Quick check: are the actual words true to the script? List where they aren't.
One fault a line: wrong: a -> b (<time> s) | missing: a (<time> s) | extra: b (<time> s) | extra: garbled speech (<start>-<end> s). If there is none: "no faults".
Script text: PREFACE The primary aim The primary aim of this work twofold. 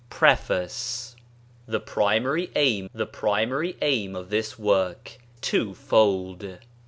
no faults